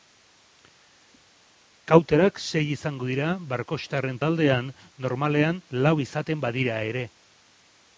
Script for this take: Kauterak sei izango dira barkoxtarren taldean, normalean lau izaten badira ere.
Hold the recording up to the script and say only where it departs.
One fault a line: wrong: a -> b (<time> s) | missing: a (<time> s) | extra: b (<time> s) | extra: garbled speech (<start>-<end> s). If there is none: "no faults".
no faults